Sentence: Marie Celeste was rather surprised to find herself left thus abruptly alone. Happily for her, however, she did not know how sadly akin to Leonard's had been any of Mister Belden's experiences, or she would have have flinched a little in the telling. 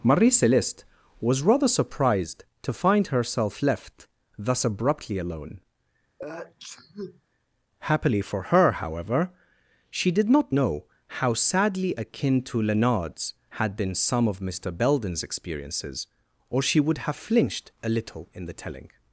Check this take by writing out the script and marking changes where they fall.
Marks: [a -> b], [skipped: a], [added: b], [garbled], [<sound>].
Marie Celeste was rather surprised to find herself left thus abruptly alone. [sneeze] Happily for her, however, she did not know how sadly akin to Leonard's had been [any -> some] of Mister Belden's experiences, or she would have [skipped: have] flinched a little in the telling.